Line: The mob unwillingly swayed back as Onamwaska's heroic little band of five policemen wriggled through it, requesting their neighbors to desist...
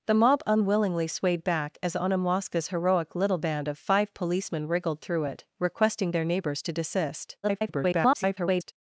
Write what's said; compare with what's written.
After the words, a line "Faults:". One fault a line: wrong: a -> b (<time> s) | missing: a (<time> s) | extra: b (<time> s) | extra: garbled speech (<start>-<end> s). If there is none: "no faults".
The mob unwillingly swayed back as Onamwaska's heroic little band of five policemen wriggled through it, requesting their neighbors to desist... [garbled]
Faults:
extra: garbled speech (7.4-8.7 s)